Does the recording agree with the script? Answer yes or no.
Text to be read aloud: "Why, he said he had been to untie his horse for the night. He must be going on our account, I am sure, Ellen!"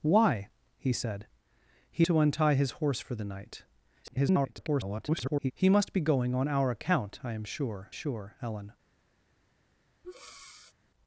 no